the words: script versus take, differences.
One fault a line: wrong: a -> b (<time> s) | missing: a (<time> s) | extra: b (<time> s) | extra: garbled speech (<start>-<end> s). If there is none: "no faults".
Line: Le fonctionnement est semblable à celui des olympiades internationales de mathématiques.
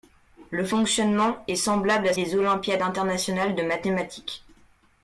missing: celui (2.1 s)